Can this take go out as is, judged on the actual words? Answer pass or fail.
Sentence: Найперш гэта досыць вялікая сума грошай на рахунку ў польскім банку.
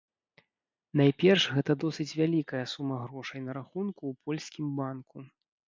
pass